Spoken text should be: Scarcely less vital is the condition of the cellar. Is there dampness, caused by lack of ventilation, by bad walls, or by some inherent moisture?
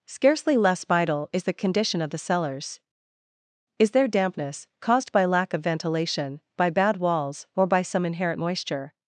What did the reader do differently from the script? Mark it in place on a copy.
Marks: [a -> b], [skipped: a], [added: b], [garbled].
Scarcely less vital is the condition of the [cellar. -> cellars] Is there dampness, caused by lack of ventilation, by bad walls, or by some inherent moisture?